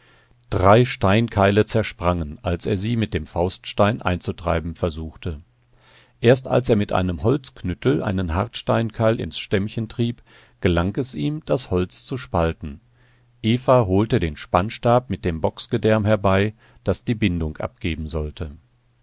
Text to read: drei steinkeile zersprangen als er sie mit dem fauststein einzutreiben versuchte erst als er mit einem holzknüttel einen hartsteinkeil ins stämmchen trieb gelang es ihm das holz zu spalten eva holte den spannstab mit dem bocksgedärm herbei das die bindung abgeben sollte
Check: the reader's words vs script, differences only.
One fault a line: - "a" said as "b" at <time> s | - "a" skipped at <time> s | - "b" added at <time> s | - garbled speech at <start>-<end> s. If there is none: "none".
none